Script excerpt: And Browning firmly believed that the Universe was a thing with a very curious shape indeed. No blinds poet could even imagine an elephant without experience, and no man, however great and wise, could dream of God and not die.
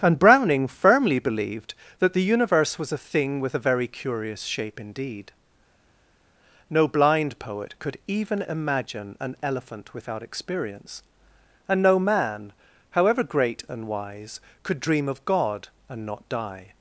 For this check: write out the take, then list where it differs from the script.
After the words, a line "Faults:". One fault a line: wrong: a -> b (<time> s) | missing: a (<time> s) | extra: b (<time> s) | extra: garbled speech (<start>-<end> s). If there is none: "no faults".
And Browning firmly believed that the Universe was a thing with a very curious shape indeed. No blind poet could even imagine an elephant without experience, and no man, however great and wise, could dream of God and not die.
Faults:
wrong: blinds -> blind (6.9 s)